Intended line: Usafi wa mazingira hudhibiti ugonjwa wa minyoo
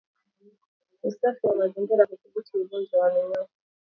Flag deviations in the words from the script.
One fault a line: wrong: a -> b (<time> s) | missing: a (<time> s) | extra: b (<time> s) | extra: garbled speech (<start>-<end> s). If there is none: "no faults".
no faults